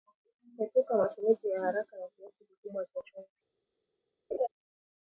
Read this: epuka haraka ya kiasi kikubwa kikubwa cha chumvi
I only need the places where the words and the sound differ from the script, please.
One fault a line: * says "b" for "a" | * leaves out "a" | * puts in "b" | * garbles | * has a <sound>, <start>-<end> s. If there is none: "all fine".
* puts in "matumizi ya"
* leaves out "kikubwa"
* has a laugh, 4.3-4.5 s